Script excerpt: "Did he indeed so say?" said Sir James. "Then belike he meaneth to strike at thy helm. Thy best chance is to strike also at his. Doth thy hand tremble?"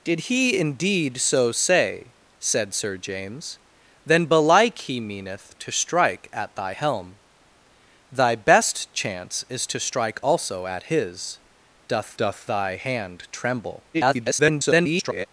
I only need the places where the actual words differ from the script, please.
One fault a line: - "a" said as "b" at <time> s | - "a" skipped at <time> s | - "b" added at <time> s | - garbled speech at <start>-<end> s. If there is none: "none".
- "doth" added at 12.2 s
- garbled speech at 13.9-15.3 s